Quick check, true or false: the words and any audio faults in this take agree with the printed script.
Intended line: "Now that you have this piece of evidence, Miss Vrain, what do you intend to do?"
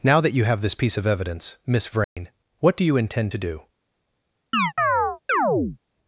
false